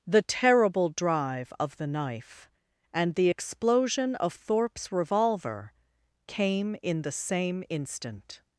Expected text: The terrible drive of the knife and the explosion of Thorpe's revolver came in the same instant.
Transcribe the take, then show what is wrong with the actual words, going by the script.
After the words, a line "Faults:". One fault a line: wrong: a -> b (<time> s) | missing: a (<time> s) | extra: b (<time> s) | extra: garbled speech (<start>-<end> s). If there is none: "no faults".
The terrible drive of the knife and the explosion of Thorpe's revolver came in the same instant.
Faults:
no faults